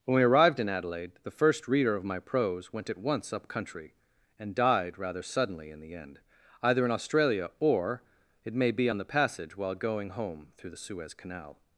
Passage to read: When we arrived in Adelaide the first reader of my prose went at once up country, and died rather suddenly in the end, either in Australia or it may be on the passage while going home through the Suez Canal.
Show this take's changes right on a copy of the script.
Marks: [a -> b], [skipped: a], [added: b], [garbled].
When we arrived in Adelaide the first reader of my prose went at once up country, and died rather suddenly in the end, either in Australia or it may be on the passage while going home through the Suez Canal.